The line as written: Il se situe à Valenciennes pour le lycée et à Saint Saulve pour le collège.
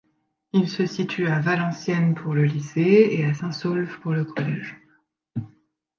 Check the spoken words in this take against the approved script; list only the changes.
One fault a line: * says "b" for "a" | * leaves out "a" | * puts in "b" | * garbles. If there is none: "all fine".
all fine